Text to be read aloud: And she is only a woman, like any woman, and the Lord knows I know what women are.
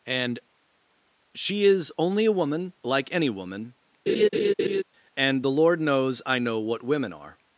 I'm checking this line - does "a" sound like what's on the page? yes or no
yes